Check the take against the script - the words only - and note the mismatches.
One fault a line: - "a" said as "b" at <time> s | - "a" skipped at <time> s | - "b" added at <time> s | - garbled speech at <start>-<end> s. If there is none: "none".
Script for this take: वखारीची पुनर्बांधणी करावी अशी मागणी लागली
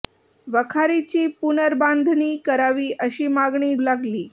none